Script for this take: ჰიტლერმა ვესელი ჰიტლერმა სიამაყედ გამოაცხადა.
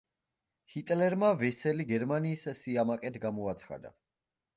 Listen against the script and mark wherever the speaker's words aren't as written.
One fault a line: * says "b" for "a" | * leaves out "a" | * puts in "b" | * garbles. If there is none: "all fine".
* says "გერმანიის" for "ჰიტლერმა"